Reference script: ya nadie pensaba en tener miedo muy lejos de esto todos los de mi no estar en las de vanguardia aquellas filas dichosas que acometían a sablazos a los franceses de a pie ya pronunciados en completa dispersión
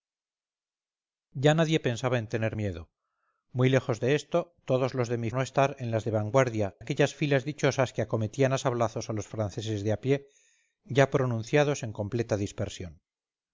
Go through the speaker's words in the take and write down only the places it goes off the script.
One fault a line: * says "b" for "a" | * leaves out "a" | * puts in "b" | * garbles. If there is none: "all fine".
all fine